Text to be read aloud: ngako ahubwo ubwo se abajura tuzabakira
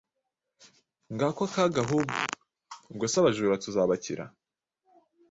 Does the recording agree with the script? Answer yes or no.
no